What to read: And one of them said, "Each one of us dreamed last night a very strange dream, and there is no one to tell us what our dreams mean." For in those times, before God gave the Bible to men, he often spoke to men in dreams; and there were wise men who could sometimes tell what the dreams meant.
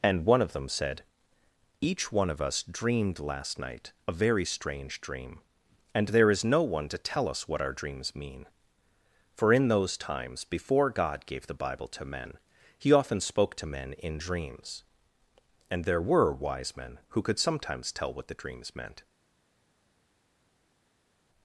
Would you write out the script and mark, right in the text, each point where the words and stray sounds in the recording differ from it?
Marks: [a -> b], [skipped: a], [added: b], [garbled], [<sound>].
And one of them said, "Each one of us dreamed last night a very strange dream, and there is no one to tell us what our dreams mean." For in those times, before God gave the Bible to men, he often spoke to men in dreams; and there were wise men who could sometimes tell what the dreams meant.